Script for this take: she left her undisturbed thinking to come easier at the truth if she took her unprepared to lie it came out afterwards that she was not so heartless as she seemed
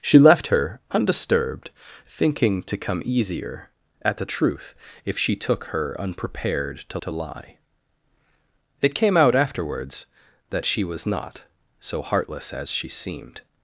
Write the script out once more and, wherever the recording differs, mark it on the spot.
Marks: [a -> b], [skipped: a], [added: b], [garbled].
she left her undisturbed thinking to come easier at the truth if she took her unprepared to [added: to] lie it came out afterwards that she was not so heartless as she seemed